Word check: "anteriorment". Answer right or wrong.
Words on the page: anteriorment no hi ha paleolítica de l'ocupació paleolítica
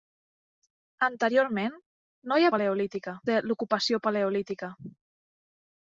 right